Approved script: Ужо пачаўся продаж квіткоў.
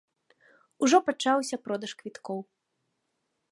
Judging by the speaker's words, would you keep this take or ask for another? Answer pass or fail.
pass